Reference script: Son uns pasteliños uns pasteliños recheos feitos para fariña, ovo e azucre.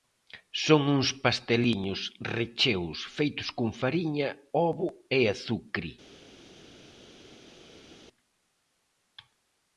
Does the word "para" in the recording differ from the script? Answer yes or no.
yes